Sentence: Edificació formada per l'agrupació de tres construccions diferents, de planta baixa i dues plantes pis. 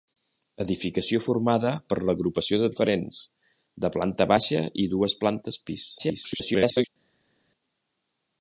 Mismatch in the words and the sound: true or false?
true